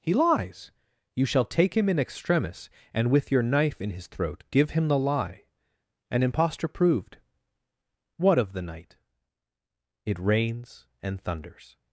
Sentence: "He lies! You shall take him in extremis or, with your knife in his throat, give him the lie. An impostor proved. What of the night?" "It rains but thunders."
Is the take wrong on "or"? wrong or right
wrong